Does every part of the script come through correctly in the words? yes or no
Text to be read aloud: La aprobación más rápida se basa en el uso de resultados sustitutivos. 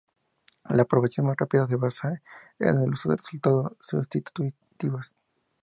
yes